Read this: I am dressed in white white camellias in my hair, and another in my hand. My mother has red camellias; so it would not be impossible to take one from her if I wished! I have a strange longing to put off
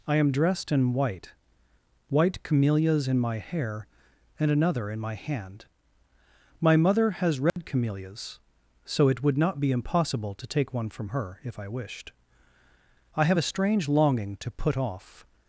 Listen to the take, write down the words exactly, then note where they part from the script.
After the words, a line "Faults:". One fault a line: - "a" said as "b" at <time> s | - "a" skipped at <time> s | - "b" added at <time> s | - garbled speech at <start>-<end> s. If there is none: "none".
I am dressed in white white camellias in my hair, and another in my hand. My mother has red camellias; so it would not be impossible to take one from her if I wished! I have a strange longing to put off
Faults:
none